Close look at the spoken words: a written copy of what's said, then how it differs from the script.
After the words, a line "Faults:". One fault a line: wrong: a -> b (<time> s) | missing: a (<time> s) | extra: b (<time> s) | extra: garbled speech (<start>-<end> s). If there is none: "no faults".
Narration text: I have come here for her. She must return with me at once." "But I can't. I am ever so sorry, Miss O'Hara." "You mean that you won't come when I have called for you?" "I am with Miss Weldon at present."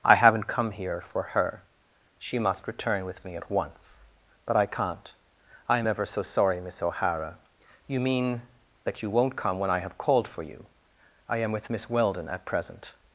I haven't come here for her. She must return with me at once." "But I can't. I am ever so sorry, Miss O'Hara." "You mean that you won't come when I have called for you?" "I am with Miss Weldon at present."
Faults:
wrong: have -> haven't (0.1 s)